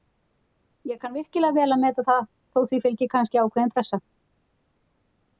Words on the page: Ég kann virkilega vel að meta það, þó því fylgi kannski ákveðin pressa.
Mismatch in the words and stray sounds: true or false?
false